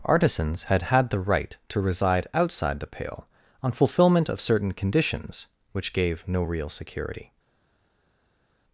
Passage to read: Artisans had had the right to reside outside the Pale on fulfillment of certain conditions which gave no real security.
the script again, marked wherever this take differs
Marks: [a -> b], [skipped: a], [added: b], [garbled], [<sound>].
Artisans had had the right to reside outside the Pale on fulfillment of certain conditions which gave no real security.